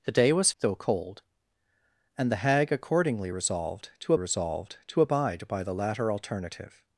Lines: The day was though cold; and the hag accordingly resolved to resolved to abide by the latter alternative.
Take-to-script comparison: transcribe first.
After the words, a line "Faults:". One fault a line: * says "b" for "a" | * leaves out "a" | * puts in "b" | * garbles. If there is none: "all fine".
The day was though cold; and the hag accordingly resolved to resolved to abide by the latter alternative.
Faults:
all fine